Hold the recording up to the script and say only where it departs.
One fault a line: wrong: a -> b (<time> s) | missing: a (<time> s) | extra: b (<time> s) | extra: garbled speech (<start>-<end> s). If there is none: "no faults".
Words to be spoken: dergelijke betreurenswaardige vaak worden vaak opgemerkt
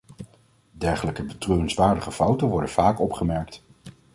wrong: vaak -> fouten (2.1 s)